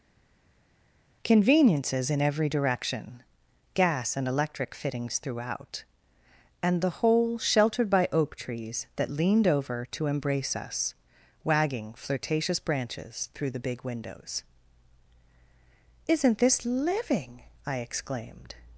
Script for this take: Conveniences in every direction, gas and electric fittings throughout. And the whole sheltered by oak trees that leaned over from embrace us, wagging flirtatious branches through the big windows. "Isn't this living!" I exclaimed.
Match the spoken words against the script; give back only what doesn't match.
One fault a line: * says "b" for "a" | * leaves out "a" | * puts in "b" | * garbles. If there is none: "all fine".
* says "to" for "from"